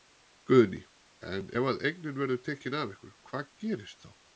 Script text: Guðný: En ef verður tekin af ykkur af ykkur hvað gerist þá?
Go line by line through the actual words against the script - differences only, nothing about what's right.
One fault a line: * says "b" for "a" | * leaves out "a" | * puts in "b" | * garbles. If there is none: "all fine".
* puts in "að eignin"
* leaves out "af ykkur"